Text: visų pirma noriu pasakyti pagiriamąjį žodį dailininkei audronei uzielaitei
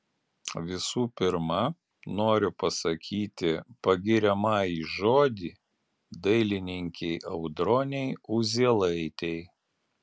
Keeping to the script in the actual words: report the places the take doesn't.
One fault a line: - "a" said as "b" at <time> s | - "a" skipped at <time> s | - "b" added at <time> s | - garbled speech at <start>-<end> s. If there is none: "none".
none